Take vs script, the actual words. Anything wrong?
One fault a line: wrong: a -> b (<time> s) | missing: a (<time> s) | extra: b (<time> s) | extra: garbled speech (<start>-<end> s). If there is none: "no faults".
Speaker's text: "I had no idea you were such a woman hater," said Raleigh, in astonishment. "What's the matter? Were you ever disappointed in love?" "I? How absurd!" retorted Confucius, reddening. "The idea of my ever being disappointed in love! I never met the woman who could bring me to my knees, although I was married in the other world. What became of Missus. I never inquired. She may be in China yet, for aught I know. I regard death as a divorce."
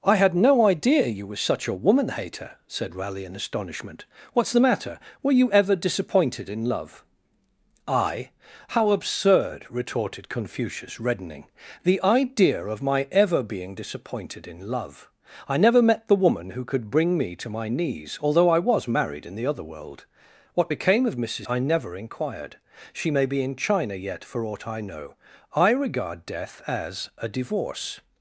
no faults